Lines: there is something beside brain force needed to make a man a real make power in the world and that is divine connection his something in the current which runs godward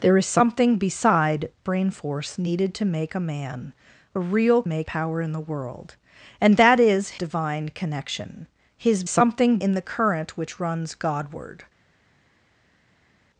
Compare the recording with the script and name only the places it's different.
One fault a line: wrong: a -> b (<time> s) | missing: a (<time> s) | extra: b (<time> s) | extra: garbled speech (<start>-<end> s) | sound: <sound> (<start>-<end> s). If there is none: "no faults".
no faults